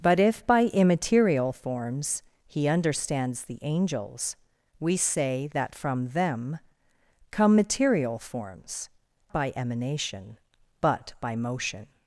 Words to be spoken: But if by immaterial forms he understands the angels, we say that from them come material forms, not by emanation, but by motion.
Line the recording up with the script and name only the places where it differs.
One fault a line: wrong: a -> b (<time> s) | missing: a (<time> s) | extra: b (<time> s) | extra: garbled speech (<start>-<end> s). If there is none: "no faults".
missing: not (8.9 s)